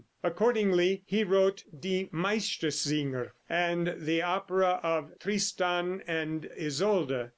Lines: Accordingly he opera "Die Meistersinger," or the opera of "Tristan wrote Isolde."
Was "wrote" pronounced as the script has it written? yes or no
no